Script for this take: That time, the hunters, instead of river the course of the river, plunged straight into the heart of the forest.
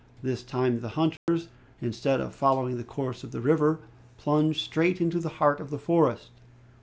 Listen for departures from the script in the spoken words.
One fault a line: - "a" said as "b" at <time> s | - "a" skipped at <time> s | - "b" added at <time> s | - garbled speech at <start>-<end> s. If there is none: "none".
- "That" said as "This" at 0.2 s
- "river" said as "following" at 2.3 s